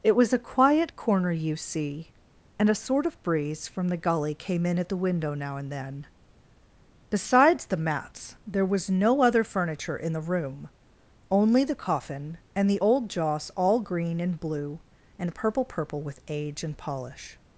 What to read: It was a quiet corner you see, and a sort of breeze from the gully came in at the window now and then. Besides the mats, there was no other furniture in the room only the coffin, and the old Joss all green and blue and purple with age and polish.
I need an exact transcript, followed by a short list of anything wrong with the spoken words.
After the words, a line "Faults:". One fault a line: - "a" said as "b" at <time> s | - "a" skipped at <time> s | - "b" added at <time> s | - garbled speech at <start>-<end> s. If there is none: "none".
It was a quiet corner you see, and a sort of breeze from the gully came in at the window now and then. Besides the mats, there was no other furniture in the room only the coffin, and the old Joss all green and blue and purple purple with age and polish.
Faults:
- "purple" added at 15.6 s